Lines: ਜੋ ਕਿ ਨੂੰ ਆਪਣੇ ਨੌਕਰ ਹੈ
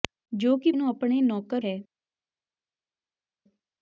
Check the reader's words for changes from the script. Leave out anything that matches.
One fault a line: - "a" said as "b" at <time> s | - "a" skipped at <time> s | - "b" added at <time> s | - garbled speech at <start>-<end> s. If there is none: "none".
none